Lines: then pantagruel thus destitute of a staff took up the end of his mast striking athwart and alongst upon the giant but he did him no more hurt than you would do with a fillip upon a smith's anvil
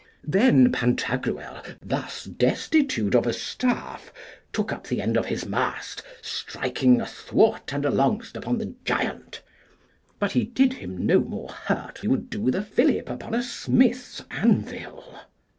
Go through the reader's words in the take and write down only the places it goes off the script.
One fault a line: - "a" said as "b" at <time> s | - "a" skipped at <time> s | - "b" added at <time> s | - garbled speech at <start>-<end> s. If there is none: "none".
- "than" skipped at 12.0 s